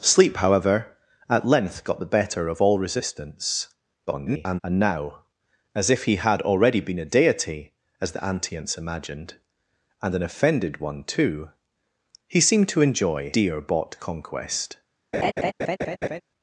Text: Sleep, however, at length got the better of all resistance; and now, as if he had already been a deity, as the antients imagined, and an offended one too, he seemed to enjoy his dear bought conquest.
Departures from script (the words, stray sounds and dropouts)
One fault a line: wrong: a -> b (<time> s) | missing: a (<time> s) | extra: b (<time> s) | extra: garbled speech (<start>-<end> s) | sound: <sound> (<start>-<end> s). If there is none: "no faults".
extra: garbled speech (4.1-4.6 s)
missing: his (13.3 s)
sound: laugh (15.1-16.2 s)